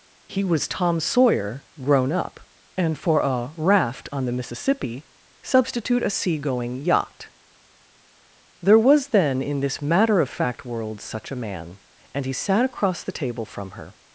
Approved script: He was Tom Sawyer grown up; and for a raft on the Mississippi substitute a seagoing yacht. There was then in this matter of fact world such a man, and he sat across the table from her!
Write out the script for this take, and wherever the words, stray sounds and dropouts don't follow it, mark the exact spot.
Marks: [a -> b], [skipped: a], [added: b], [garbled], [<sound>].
He was Tom Sawyer grown up; and for a raft on the Mississippi substitute a seagoing yacht. There was then in this matter of fact world such a man, and he sat across the table from her!